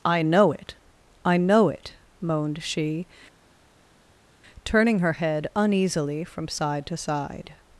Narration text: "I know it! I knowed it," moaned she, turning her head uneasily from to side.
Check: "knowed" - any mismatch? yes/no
yes